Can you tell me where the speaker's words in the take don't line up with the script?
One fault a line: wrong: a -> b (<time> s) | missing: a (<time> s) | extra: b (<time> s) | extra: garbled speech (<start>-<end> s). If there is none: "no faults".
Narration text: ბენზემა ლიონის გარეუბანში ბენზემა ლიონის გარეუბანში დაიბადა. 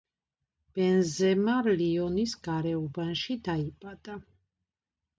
missing: ბენზემა ლიონის გარეუბანში (3.4 s)